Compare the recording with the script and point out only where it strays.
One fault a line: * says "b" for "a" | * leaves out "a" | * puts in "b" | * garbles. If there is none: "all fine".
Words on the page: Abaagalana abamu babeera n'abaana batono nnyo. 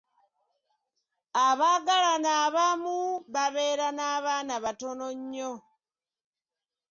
all fine